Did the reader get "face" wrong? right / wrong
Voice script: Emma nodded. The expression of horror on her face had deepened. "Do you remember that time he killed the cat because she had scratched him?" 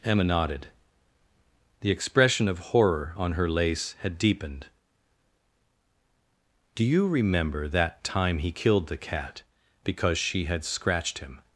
wrong